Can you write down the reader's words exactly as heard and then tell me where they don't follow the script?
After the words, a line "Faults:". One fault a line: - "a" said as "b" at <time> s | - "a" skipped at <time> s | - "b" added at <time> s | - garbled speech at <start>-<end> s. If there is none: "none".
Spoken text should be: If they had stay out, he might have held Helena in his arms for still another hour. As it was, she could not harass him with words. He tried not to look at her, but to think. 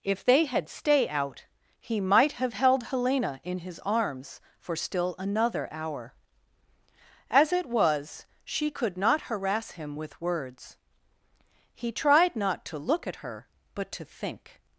If they had stay out, he might have held Helena in his arms for still another hour. As it was, she could not harass him with words. He tried not to look at her, but to think.
Faults:
none